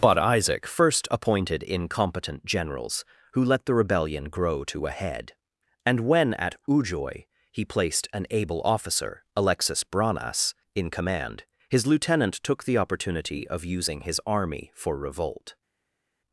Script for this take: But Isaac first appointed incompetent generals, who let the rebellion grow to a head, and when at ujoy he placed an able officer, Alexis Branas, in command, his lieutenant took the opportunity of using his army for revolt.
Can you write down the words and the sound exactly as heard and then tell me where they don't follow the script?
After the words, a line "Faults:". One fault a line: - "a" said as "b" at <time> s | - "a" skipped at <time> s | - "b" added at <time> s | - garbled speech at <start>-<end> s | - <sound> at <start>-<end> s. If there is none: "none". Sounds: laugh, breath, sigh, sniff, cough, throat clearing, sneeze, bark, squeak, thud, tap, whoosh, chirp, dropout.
But Isaac first appointed incompetent generals, who let the rebellion grow to a head, and when at ujoy he placed an able officer, Alexis Branas, in command, his lieutenant took the opportunity of using his army for revolt.
Faults:
none